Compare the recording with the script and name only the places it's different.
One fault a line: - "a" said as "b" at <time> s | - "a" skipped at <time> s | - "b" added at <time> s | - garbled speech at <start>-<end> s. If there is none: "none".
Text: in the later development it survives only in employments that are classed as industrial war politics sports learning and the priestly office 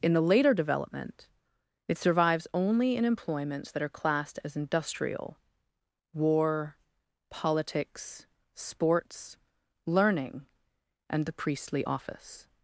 none